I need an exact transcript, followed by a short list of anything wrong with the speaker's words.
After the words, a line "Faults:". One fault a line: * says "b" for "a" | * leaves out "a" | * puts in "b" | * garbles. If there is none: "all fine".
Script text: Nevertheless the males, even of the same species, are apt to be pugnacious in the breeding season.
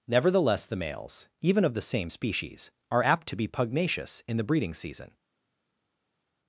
Nevertheless the males, even of the same species, are apt to be pugnacious in the breeding season.
Faults:
all fine